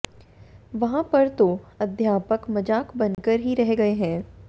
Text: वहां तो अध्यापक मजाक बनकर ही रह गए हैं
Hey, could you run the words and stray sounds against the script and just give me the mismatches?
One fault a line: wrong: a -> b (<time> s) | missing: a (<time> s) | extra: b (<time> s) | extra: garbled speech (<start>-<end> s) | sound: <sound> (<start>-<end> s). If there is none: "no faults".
extra: पर (1.0 s)
sound: dropout (3.1-3.2 s)